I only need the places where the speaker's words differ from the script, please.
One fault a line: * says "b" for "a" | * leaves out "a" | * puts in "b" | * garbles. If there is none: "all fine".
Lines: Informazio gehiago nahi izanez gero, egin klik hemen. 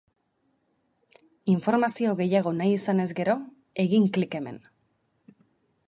all fine